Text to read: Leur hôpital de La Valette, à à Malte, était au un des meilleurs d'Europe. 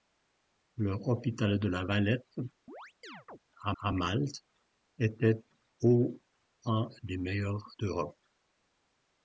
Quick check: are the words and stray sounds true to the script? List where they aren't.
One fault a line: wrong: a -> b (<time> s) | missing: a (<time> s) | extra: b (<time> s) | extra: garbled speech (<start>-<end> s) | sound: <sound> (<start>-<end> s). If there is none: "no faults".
sound: chirp (2.7-3.4 s)